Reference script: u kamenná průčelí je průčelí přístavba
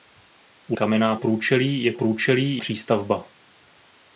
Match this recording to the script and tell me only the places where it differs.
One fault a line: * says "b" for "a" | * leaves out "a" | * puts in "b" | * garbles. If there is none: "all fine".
all fine